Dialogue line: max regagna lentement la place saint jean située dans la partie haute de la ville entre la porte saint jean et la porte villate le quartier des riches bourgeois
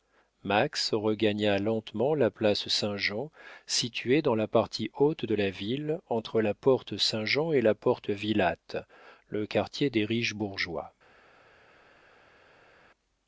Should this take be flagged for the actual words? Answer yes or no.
no